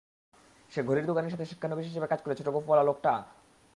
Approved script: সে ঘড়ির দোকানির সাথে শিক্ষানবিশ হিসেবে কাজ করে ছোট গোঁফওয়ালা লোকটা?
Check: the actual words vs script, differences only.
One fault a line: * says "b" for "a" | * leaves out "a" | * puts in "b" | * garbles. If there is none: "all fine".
all fine